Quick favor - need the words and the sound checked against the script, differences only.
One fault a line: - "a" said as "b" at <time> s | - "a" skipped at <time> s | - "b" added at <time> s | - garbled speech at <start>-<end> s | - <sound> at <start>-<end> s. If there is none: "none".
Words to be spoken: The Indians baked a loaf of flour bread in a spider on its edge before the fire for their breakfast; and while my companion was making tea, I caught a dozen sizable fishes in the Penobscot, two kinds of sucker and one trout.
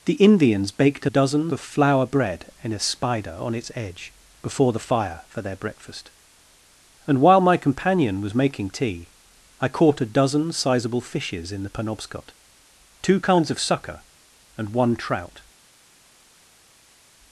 - "loaf" said as "dozen" at 1.1 s